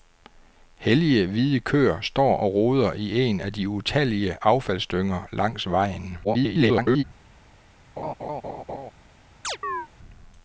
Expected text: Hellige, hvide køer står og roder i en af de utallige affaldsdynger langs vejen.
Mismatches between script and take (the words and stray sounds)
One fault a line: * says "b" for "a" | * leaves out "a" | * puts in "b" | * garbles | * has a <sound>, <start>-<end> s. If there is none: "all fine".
* garbles
* has a laugh, 8.0-8.9 s
* has a chirp, 9.4-9.9 s